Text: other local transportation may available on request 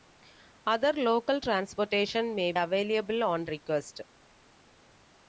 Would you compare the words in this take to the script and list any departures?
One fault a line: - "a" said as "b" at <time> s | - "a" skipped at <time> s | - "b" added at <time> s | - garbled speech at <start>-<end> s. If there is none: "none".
none